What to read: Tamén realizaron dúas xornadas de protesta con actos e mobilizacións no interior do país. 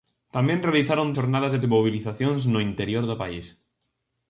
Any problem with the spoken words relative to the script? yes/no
yes